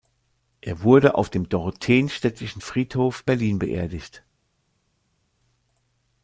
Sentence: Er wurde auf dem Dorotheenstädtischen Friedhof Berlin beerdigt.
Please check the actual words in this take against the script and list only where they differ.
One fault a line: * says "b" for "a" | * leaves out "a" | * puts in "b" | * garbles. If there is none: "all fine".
all fine